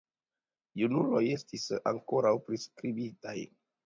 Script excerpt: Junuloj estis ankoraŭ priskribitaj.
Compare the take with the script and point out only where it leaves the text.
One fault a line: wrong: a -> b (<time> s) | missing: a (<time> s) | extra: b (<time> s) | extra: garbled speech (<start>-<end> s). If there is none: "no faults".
no faults